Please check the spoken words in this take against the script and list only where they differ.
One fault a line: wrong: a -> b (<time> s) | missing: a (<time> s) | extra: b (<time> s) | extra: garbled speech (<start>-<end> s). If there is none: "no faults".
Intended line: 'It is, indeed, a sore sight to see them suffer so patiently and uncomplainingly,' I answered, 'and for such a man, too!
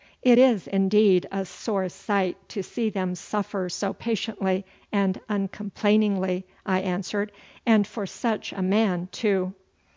no faults